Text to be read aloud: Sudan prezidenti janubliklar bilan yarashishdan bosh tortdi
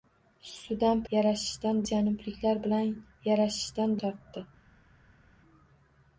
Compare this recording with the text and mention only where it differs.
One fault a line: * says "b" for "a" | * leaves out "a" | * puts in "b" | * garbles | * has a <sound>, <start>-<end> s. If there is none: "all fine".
* says "yarashishdan" for "prezidenti"
* leaves out "bosh"